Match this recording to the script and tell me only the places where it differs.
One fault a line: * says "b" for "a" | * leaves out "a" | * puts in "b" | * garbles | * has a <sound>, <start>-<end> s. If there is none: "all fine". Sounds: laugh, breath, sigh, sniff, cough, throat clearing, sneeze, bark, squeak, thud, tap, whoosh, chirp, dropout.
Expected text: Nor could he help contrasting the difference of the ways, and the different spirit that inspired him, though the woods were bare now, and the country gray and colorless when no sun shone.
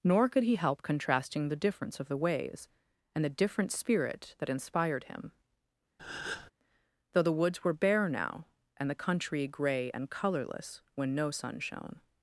* has a breath, 6.0-6.5 s